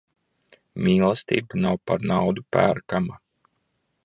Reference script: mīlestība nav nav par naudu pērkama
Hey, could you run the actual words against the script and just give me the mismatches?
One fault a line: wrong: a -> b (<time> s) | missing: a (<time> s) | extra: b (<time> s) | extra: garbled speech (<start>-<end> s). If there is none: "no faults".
missing: nav (1.8 s)